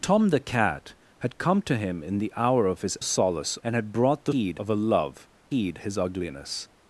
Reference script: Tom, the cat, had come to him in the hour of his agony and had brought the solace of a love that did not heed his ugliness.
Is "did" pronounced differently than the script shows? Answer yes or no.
yes